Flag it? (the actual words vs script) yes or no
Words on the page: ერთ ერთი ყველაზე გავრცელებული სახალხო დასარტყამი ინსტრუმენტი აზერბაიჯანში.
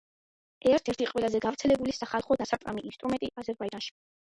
no